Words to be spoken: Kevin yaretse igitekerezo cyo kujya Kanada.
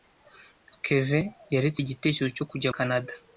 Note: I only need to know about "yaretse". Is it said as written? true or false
true